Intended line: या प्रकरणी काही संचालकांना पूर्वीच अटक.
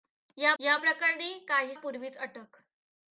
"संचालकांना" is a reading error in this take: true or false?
true